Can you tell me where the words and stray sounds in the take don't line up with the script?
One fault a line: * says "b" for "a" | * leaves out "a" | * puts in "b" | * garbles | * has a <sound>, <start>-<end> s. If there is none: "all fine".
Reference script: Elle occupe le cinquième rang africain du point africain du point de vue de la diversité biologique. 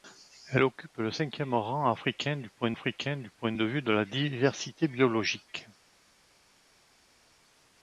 all fine